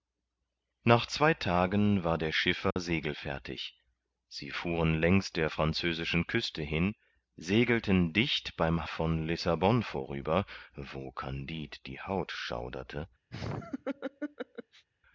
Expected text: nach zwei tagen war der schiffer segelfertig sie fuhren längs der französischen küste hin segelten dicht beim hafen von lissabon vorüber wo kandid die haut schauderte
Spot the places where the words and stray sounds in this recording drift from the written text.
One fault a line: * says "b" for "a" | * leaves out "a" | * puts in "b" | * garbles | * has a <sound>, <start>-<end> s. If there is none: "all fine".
* has a dropout, 2.7-2.8 s
* leaves out "hafen"
* has a laugh, 13.3-14.9 s